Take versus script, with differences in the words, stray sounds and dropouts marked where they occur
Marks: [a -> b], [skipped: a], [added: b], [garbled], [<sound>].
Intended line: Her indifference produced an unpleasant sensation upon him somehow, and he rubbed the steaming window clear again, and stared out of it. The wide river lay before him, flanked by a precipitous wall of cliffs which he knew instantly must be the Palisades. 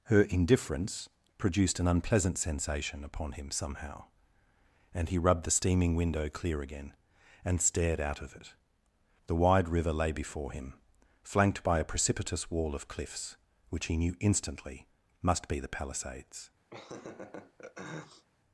Her indifference produced an unpleasant sensation upon him somehow, and he rubbed the steaming window clear again, and stared out of it. The wide river lay before him, flanked by a precipitous wall of cliffs which he knew instantly must be the Palisades. [laugh]